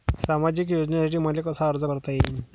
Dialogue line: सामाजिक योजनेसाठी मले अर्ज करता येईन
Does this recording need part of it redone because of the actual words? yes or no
yes